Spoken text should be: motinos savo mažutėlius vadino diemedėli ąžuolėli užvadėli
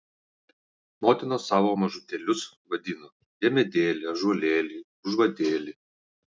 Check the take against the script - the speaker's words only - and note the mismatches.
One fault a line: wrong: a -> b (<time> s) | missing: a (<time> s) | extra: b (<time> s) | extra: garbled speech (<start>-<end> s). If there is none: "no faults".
no faults